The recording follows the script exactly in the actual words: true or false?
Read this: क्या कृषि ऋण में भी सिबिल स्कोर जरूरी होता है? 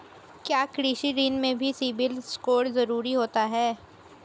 true